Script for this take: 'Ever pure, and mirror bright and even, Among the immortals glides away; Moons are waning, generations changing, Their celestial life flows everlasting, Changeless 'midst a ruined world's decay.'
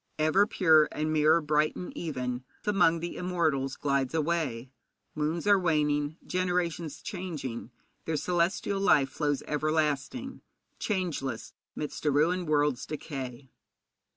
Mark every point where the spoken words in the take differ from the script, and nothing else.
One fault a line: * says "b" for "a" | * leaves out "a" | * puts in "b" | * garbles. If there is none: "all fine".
all fine